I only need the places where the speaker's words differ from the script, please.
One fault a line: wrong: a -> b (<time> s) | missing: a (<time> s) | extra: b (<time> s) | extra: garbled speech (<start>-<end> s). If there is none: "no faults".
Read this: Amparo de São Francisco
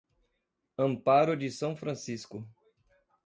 no faults